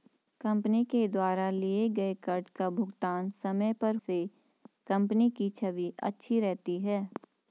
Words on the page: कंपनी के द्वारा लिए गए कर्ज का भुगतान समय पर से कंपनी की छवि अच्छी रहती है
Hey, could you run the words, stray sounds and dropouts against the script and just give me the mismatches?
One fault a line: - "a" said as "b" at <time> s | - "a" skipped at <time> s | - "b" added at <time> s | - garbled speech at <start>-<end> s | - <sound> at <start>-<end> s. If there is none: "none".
none